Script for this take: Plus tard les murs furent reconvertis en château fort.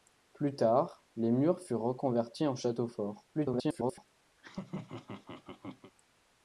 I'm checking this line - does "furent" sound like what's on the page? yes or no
yes